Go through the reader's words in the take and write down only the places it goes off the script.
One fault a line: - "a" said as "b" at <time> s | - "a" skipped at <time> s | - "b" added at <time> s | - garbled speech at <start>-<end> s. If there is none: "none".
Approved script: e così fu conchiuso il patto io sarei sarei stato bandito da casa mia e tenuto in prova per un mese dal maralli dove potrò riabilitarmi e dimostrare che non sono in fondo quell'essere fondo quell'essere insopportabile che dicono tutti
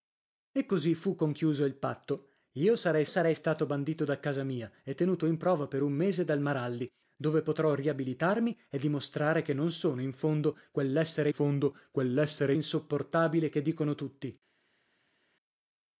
none